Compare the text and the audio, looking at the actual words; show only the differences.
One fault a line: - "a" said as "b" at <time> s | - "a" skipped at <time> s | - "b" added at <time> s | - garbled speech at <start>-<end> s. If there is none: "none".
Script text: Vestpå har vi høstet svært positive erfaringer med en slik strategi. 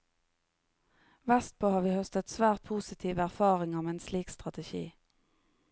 none